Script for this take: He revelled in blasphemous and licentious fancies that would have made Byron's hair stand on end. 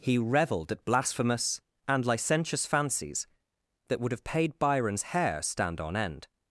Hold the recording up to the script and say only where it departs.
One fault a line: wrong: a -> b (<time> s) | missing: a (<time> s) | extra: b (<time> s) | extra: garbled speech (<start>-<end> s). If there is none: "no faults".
wrong: in -> at (0.7 s)
wrong: made -> paid (4.2 s)